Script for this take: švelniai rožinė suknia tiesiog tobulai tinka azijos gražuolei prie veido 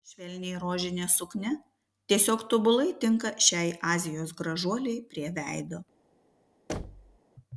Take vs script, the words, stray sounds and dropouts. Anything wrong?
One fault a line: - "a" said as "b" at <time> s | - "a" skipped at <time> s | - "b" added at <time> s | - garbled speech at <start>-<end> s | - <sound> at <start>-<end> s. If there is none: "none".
- "šiai" added at 3.5 s
- thud at 6.7-7.2 s